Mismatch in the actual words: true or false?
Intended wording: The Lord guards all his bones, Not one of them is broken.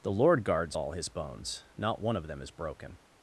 false